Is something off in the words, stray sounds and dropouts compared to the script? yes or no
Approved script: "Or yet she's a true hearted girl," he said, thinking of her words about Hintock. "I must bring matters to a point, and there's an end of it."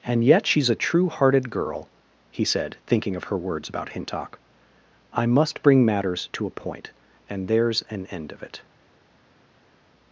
yes